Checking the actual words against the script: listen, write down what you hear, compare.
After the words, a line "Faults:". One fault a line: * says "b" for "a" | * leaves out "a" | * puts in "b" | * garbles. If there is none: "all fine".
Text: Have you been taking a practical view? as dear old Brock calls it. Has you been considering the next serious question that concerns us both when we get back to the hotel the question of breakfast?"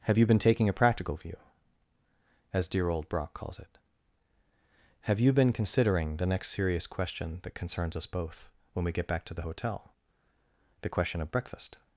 Have you been taking a practical view? as dear old Brock calls it. Have you been considering the next serious question that concerns us both when we get back to the hotel the question of breakfast?"
Faults:
* says "Have" for "Has"